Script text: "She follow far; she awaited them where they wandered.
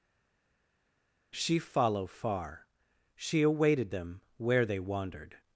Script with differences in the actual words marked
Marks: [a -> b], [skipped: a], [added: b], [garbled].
"She follow far; she awaited them where they wandered.